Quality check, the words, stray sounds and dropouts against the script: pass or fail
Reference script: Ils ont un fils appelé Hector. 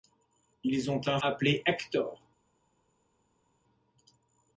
fail